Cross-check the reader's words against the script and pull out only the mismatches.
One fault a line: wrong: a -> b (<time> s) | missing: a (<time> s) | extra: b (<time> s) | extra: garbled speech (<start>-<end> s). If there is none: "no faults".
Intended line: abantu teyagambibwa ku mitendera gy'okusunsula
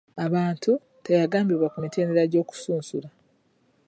no faults